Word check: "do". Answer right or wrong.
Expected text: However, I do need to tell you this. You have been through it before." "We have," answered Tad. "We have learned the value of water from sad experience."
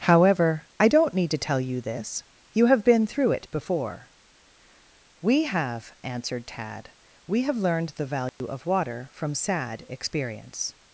wrong